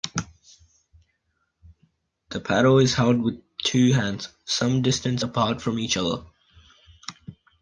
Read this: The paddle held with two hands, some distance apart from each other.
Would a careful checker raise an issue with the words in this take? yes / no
yes